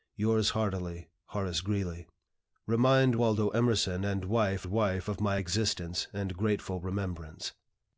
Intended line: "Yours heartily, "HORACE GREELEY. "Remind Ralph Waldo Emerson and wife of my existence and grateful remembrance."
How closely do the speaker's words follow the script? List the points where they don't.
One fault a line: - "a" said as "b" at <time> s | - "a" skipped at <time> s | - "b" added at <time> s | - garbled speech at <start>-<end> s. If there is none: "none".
- "Ralph" skipped at 3.2 s
- "wife" added at 4.7 s